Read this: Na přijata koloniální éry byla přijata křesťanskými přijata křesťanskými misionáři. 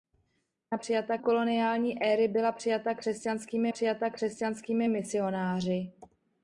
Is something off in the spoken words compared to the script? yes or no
no